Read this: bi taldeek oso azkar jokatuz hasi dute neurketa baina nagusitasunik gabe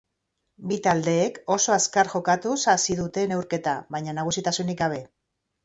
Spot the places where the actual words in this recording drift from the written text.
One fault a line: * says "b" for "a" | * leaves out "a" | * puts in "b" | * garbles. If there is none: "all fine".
all fine